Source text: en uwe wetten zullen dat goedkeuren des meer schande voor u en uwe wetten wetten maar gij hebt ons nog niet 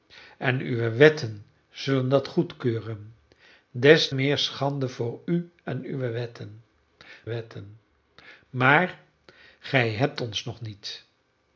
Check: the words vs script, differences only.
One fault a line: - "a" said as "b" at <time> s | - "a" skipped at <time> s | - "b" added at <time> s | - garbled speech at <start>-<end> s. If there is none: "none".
none